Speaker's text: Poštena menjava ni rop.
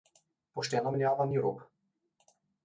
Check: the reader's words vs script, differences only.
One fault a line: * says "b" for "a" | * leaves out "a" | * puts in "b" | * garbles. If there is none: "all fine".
all fine